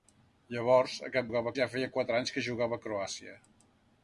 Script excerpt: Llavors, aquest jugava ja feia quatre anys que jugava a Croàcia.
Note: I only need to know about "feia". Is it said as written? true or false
true